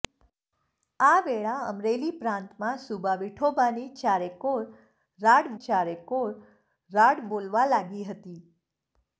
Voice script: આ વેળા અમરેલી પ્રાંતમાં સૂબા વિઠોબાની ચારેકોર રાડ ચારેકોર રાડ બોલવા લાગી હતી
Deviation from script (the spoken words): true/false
false